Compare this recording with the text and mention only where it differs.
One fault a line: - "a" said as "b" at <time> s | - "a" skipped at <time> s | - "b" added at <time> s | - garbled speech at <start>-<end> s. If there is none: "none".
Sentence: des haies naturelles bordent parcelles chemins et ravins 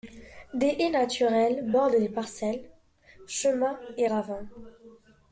- "les" added at 1.9 s